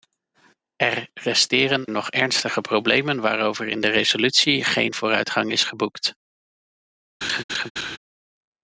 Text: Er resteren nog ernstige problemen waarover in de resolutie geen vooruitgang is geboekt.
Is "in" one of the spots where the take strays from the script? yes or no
no